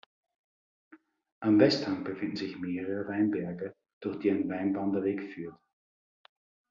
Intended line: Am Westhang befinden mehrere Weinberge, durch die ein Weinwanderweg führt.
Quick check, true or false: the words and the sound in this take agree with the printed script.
false